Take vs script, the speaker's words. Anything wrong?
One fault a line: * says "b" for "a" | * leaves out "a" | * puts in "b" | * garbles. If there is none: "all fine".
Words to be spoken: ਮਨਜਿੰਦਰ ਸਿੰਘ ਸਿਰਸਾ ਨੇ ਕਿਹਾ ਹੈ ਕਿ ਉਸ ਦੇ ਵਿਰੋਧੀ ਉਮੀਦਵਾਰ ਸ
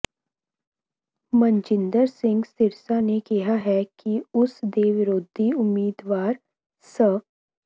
all fine